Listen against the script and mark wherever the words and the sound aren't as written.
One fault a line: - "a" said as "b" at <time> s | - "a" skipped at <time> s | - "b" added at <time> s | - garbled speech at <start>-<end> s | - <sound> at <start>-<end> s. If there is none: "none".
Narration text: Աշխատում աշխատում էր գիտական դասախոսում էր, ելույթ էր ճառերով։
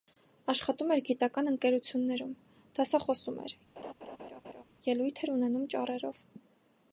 - "աշխատում" skipped at 0.9 s
- "ընկերություններում" added at 1.5 s
- laugh at 3.8-4.6 s
- "ունենում" added at 5.4 s